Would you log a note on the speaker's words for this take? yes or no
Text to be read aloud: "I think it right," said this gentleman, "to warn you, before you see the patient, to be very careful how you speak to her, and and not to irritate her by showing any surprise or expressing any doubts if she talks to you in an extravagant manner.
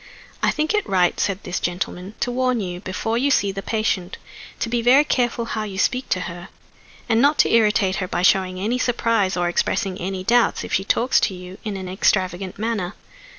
yes